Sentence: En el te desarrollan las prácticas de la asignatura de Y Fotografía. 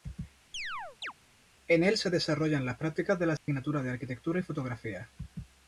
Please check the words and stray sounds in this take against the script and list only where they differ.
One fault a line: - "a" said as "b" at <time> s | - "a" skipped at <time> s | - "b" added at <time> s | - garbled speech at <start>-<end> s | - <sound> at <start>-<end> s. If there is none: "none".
- chirp at 0.5-1.1 s
- "te" said as "se" at 2.0 s
- dropout at 3.4-3.5 s
- "Arquitectura" added at 3.9 s